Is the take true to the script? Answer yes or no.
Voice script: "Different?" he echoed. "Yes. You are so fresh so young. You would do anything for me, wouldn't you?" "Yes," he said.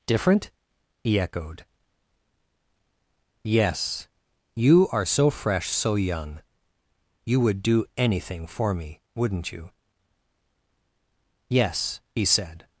yes